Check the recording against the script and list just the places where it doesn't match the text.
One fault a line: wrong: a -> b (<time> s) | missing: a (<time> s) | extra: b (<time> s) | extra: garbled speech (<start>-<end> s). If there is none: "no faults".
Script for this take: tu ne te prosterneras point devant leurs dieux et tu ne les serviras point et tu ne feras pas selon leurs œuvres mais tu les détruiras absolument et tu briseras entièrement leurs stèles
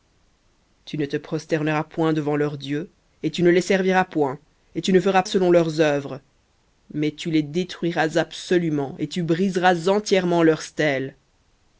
missing: pas (5.2 s)